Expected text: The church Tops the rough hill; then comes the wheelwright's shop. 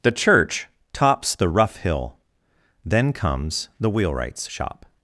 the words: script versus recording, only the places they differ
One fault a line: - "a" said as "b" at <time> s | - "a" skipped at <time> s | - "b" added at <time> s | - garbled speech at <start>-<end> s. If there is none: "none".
none